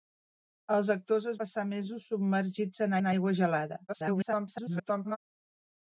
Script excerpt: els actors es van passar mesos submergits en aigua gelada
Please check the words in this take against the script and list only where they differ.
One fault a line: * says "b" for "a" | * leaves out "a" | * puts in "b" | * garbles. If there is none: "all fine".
* leaves out "van"
* puts in "en"
* garbles